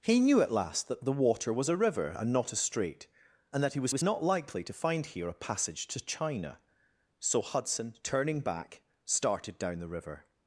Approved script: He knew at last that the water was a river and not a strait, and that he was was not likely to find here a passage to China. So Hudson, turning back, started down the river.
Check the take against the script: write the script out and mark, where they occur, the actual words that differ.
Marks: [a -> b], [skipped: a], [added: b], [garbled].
He knew at last that the water was a river and not a strait, and that he was was not likely to find here a passage to China. So Hudson, turning back, started down the river.